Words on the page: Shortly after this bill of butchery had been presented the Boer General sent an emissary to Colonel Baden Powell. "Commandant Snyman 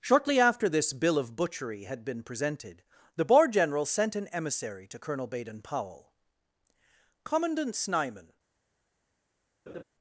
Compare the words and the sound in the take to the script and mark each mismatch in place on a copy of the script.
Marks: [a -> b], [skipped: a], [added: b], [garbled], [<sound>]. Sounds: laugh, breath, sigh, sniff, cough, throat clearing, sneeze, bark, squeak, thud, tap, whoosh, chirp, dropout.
Shortly after this bill of butchery had been presented the Boer General sent an emissary to Colonel Baden Powell. "Commandant Snyman [laugh]